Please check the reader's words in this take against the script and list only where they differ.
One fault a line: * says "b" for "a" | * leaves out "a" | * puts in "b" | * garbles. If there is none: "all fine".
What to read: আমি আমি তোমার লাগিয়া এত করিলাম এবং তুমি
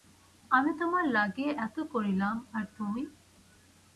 * leaves out "আমি"
* says "আর" for "এবং"